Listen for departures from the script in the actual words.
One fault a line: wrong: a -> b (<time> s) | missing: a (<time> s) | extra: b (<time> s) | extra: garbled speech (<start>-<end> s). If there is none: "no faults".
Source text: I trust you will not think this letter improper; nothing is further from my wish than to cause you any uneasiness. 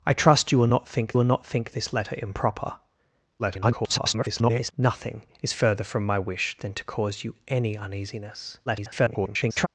extra: will not think (1.1 s)
extra: garbled speech (3.4-4.7 s)
extra: garbled speech (8.7-9.7 s)